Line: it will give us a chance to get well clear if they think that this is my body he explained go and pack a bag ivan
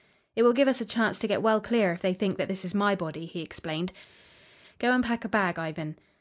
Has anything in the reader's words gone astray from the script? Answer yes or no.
no